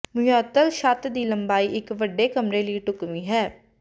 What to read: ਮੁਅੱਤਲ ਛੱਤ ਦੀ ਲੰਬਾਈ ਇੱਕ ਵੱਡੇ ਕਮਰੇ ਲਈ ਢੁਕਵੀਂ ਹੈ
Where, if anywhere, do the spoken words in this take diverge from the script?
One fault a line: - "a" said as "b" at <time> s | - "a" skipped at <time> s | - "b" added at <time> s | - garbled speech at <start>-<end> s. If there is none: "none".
none